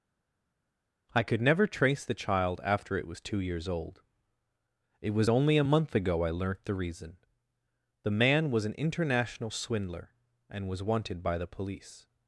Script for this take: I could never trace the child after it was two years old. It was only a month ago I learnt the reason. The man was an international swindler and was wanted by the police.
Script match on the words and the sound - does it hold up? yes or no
yes